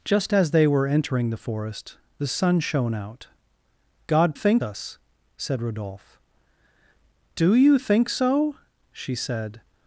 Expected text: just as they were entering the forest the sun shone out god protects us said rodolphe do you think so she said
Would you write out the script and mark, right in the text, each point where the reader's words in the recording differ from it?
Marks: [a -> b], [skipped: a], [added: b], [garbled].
just as they were entering the forest the sun shone out god [protects -> think] us said rodolphe do you think so she said